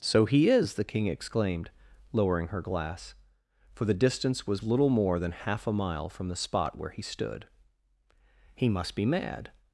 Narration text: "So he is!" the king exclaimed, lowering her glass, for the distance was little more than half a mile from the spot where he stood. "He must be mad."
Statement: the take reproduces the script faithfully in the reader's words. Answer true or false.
true